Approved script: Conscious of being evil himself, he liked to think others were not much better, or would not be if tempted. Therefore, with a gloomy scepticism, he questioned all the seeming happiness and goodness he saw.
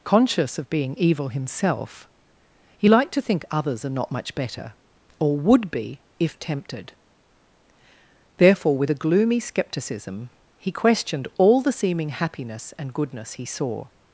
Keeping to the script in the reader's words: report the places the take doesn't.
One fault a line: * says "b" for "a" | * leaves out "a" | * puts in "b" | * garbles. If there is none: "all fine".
* says "are" for "were"
* leaves out "not"